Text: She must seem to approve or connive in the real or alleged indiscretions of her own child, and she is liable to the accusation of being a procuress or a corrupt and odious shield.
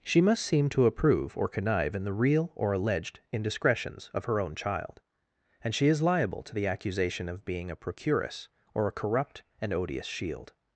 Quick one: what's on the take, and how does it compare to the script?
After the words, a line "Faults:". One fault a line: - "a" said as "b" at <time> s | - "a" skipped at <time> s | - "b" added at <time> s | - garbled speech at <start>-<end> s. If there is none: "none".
She must seem to approve or connive in the real or alleged indiscretions of her own child, and she is liable to the accusation of being a procuress or a corrupt and odious shield.
Faults:
none